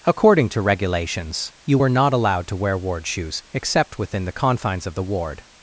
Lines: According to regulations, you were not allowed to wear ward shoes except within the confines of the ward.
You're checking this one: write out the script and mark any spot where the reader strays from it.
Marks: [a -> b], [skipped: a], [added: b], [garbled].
According to regulations, you were not allowed to wear ward shoes except within the confines of the ward.